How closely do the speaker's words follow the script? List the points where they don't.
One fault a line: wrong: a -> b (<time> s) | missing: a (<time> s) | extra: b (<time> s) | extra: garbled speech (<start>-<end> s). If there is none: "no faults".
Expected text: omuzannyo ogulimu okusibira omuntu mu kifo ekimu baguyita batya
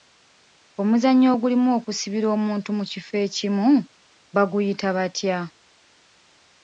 no faults